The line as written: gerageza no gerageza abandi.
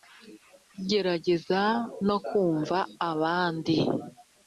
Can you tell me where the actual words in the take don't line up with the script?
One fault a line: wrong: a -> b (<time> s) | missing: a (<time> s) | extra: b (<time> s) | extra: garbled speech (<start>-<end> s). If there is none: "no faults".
wrong: gerageza -> kumva (2.3 s)